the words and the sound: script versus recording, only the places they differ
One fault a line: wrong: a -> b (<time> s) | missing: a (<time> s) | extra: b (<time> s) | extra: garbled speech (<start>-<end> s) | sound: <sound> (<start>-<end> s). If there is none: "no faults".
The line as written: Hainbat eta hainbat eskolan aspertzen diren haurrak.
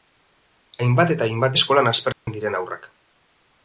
sound: dropout (2.1-2.3 s)